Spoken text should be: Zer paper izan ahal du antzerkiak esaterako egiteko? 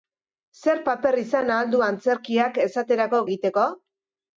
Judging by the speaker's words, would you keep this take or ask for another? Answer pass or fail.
pass